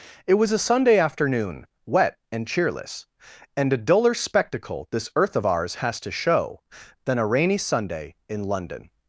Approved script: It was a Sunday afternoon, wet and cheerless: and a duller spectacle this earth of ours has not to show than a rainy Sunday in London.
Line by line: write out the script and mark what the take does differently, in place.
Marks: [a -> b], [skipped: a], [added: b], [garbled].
It was a Sunday afternoon, wet and cheerless: and a duller spectacle this earth of ours has [skipped: not] to show than a rainy Sunday in London.